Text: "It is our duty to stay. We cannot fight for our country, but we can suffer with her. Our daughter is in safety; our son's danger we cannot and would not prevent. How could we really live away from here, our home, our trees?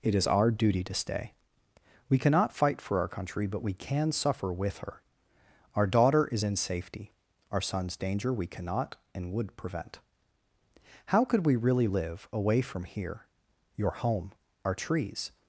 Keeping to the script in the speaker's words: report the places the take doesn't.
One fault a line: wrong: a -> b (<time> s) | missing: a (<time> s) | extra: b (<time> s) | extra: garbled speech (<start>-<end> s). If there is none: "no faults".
missing: not (9.6 s)
wrong: our -> your (13.7 s)